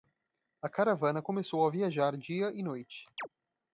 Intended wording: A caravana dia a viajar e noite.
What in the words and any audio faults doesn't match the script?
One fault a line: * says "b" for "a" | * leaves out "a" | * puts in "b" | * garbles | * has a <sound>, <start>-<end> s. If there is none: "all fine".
* says "começou" for "dia"
* puts in "dia"
* has a chirp, 3.2-3.3 s